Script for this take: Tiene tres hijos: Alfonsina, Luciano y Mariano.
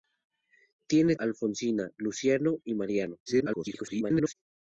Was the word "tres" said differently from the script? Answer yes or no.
yes